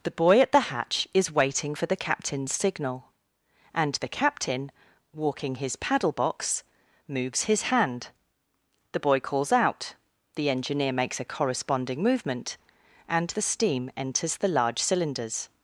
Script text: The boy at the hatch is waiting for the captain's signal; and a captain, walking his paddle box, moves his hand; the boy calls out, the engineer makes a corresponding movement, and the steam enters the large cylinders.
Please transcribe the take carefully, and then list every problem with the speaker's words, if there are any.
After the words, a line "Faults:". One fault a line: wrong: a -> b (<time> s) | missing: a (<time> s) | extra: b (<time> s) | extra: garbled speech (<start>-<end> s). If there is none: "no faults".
The boy at the hatch is waiting for the captain's signal; and the captain, walking his paddle box, moves his hand; the boy calls out, the engineer makes a corresponding movement, and the steam enters the large cylinders.
Faults:
wrong: a -> the (3.9 s)